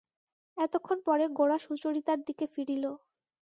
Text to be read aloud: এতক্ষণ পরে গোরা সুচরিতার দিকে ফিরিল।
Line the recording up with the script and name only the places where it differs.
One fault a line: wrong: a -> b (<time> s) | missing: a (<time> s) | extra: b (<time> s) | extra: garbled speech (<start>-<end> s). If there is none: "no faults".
no faults